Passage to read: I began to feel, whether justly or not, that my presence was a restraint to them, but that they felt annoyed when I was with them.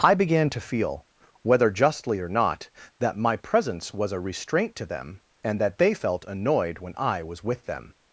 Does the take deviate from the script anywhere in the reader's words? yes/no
yes